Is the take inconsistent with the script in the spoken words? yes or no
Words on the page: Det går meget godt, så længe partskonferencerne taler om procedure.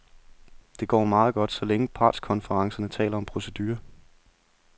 no